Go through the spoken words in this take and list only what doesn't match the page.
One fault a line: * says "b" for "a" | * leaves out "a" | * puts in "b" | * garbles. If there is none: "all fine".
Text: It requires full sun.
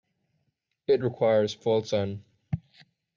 all fine